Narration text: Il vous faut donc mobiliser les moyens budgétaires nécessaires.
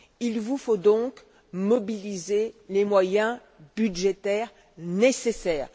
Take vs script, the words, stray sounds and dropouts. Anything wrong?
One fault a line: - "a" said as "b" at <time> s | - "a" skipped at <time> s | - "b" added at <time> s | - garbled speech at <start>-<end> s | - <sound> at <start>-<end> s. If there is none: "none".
none